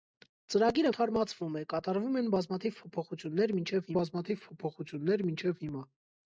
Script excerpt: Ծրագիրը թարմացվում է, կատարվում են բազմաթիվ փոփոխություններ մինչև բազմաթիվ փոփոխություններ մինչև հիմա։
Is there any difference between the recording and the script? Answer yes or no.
no